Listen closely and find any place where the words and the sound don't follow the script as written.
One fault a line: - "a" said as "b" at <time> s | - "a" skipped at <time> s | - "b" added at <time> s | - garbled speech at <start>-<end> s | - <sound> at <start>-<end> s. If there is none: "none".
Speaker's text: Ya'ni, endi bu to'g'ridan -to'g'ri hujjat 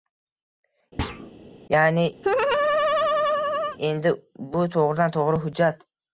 - thud at 1.0-1.3 s
- laugh at 2.2-3.8 s